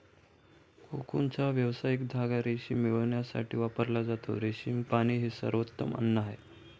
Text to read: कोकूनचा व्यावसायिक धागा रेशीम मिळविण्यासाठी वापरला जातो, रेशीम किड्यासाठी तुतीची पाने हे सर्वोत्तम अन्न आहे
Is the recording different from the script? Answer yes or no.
yes